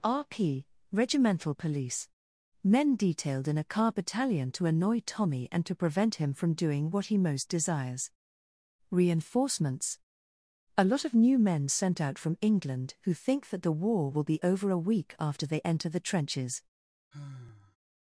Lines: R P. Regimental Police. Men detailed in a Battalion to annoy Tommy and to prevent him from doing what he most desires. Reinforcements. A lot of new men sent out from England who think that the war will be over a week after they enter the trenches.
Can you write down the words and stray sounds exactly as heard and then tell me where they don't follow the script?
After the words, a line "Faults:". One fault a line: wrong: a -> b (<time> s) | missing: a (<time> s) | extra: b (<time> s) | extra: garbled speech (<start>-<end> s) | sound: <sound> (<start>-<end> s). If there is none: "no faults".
R P. Regimental Police. Men detailed in a car Battalion to annoy Tommy and to prevent him from doing what he most desires. Reinforcements. A lot of new men sent out from England who think that the war will be over a week after they enter the trenches.
Faults:
extra: car (3.6 s)
sound: sigh (17.1-17.8 s)